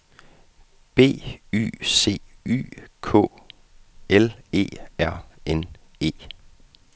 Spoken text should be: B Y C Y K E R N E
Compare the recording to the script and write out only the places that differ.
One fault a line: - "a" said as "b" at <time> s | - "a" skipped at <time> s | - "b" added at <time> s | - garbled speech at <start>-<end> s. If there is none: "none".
- "L" added at 4.1 s